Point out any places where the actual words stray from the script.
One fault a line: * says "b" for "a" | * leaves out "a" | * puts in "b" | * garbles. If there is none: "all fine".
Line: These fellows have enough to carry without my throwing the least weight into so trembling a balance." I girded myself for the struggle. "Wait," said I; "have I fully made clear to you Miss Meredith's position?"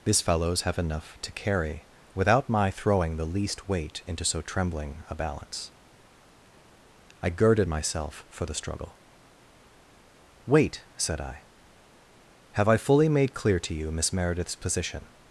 all fine